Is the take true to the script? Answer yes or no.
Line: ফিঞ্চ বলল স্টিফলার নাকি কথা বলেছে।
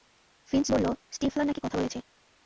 yes